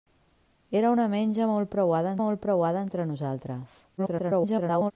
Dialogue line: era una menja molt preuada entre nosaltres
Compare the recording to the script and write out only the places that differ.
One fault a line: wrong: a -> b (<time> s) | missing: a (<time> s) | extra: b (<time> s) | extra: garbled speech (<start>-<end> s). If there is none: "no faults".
extra: molt preuada (2.2 s)
extra: garbled speech (4.0-4.9 s)